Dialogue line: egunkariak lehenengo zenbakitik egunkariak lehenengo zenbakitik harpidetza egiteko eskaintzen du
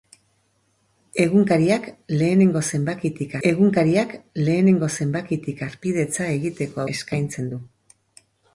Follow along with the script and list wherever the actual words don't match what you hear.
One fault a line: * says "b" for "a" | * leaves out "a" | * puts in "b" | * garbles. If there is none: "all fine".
all fine